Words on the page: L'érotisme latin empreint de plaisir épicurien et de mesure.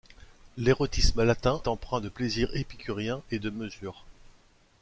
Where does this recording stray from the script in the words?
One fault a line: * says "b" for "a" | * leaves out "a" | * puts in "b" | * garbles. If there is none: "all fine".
all fine